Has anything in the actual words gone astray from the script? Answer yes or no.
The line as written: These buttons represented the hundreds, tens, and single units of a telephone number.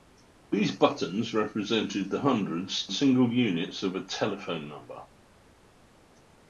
yes